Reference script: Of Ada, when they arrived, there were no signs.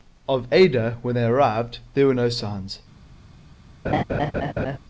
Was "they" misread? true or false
false